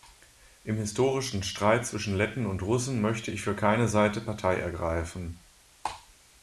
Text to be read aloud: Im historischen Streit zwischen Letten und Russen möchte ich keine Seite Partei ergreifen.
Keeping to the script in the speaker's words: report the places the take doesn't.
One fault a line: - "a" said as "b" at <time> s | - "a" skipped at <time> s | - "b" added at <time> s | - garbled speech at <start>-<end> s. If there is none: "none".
- "für" added at 3.4 s